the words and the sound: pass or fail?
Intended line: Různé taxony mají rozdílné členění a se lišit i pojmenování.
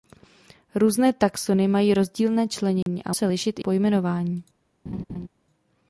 fail